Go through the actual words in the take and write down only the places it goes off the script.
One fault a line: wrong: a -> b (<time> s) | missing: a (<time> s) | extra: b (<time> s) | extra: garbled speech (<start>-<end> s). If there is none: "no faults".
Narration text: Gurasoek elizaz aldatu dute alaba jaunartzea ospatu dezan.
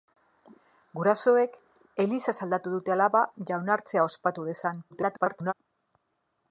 extra: garbled speech (4.9-5.5 s)